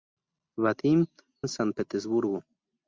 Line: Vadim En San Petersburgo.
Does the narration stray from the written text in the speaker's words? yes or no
no